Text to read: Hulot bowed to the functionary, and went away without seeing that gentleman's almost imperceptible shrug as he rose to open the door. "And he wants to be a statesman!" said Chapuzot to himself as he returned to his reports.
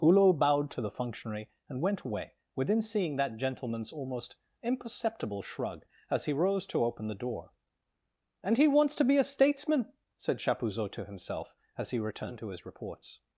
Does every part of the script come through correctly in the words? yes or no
no